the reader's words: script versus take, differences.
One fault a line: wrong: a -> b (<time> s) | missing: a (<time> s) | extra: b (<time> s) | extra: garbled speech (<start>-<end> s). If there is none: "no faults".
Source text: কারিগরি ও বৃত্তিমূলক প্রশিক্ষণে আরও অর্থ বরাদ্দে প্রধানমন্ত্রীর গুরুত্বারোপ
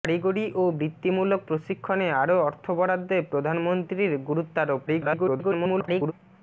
extra: garbled speech (4.9-6.1 s)